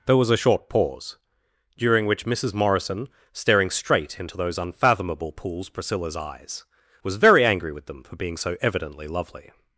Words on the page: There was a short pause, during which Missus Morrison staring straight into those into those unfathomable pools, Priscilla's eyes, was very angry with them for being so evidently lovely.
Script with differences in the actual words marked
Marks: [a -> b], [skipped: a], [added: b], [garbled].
There was a short pause, during which Missus Morrison staring straight into those [skipped: into those] unfathomable pools, Priscilla's eyes, was very angry with them for being so evidently lovely.